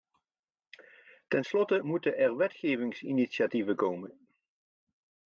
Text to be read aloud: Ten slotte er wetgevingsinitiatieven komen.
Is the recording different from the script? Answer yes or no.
yes